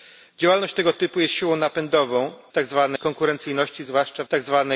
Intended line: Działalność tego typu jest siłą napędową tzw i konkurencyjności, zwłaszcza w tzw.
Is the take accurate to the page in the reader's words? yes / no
yes